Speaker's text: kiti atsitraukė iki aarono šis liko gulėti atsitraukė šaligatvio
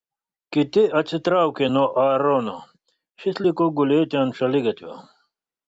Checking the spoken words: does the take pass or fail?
fail